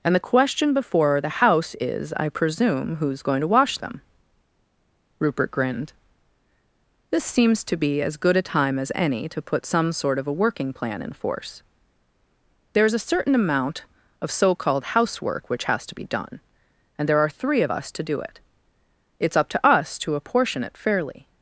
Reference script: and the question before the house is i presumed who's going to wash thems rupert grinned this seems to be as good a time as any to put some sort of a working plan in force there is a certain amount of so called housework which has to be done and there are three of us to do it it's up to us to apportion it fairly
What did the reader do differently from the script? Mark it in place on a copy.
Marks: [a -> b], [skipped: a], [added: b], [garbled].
and the question before the house is i [presumed -> presume] who's going to wash [thems -> them] rupert grinned this seems to be as good a time as any to put some sort of a working plan in force there is a certain amount of so called housework which has to be done and there are three of us to do it it's up to us to apportion it fairly